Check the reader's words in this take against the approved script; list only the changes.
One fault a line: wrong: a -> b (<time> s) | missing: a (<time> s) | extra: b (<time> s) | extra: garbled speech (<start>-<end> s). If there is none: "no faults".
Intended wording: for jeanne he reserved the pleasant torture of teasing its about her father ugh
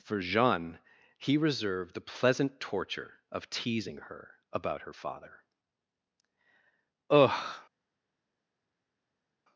wrong: its -> her (4.0 s)